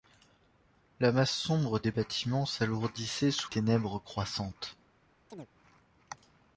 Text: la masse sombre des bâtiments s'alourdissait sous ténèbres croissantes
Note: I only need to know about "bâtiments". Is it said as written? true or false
true